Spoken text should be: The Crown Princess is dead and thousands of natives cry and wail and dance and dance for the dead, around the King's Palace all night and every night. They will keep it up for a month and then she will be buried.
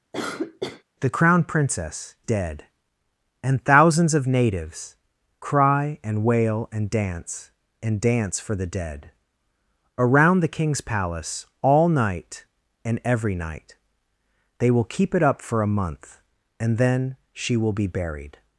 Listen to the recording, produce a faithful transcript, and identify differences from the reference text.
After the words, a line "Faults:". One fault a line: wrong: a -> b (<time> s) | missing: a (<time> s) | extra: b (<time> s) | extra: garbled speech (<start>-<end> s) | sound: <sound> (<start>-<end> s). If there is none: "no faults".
The Crown Princess dead and thousands of natives cry and wail and dance and dance for the dead, around the King's Palace all night and every night. They will keep it up for a month and then she will be buried.
Faults:
sound: cough (0.1-0.8 s)
missing: is (2.2 s)